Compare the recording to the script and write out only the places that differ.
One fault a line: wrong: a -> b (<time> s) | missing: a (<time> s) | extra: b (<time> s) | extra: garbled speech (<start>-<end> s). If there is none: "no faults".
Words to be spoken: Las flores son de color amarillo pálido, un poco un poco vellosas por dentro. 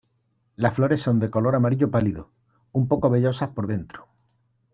missing: un poco (3.1 s)